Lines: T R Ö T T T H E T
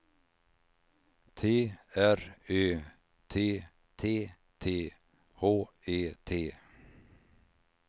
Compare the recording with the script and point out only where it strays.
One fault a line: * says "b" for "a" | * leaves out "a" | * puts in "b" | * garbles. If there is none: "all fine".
all fine